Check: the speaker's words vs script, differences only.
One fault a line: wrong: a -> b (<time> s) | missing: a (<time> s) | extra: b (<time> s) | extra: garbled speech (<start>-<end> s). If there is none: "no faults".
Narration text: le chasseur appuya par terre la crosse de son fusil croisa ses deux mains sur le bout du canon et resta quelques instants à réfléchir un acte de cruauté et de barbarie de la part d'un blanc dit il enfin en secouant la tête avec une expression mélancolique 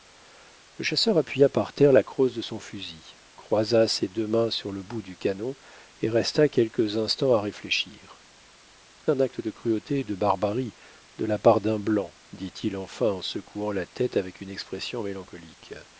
no faults